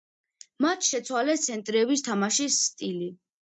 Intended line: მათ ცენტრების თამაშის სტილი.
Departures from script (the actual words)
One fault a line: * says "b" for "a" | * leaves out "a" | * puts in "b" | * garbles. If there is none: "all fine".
* puts in "შეცვალეს"